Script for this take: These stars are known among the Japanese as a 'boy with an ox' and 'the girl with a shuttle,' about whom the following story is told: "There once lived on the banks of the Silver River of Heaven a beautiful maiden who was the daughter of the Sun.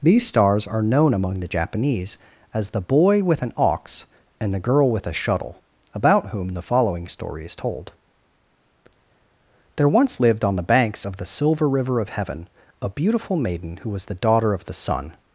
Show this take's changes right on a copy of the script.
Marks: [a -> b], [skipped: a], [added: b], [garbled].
These stars are known among the Japanese as [a -> the] 'boy with an ox' and 'the girl with a shuttle,' about whom the following story is told: "There once lived on the banks of the Silver River of Heaven a beautiful maiden who was the daughter of the Sun.